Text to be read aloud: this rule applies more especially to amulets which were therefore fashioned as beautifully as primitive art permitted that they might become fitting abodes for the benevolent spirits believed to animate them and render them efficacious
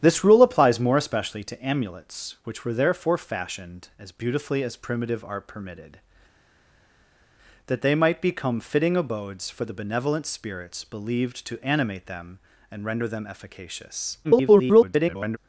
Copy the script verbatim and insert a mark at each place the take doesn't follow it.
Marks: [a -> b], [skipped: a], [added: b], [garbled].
this rule applies more especially to amulets which were therefore fashioned as beautifully as primitive art permitted that they might become fitting abodes for the benevolent spirits believed to animate them and render them efficacious [garbled]